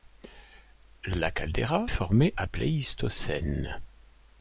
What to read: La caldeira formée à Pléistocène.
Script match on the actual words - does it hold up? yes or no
yes